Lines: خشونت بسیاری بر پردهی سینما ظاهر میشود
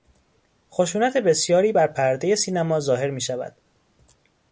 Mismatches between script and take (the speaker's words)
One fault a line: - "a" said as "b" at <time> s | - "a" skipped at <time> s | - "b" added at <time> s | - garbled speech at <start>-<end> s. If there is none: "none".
none